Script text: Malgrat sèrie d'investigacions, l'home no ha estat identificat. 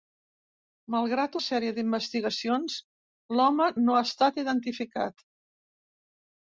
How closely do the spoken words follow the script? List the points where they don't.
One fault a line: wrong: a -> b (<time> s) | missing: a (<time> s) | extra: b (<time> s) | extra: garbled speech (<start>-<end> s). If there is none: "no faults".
no faults